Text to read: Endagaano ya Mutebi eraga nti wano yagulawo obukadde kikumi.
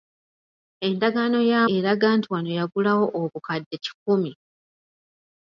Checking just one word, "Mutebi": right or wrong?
wrong